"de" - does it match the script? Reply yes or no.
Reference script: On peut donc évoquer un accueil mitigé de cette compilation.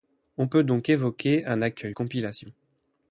no